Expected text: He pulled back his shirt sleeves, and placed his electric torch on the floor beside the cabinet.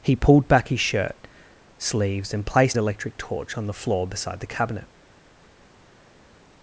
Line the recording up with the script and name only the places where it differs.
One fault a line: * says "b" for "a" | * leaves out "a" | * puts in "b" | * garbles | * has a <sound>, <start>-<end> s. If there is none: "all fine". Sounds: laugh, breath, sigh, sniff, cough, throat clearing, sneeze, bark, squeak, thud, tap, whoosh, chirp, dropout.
* leaves out "his"